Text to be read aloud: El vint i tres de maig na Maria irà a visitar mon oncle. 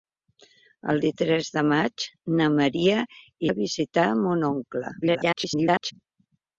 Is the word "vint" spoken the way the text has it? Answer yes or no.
no